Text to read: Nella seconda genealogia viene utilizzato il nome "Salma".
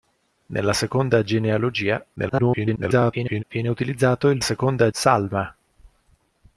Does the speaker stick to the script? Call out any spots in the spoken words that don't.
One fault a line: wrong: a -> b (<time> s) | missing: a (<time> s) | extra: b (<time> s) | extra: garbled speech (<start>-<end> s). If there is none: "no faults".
extra: garbled speech (2.2-3.4 s)
wrong: nome -> seconda (4.4 s)